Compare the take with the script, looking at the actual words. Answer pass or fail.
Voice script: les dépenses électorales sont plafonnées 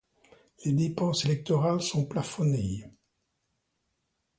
pass